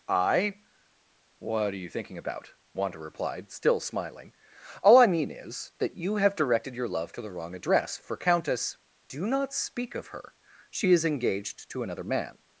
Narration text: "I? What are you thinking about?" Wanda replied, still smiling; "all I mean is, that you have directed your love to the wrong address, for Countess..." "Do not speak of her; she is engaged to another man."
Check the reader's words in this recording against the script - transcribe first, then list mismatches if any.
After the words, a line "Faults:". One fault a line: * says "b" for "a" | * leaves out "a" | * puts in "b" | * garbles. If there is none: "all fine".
"I? What are you thinking about?" Wanda replied, still smiling; "all I mean is, that you have directed your love to the wrong address, for Countess..." "Do not speak of her; she is engaged to another man."
Faults:
all fine